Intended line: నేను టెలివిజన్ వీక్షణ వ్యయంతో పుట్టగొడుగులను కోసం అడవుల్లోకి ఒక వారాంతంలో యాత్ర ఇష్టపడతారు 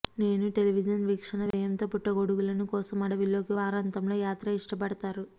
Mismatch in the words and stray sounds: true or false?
true